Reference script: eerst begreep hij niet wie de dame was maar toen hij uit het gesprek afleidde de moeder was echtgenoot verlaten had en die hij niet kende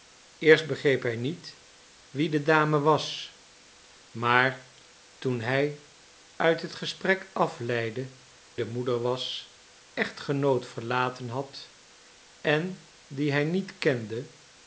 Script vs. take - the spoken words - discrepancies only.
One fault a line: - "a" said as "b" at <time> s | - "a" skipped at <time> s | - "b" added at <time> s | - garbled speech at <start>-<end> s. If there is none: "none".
none